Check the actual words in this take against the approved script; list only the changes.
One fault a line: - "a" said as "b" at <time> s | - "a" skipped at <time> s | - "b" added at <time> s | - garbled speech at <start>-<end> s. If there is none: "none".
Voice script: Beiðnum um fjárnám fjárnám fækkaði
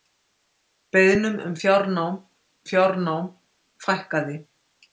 none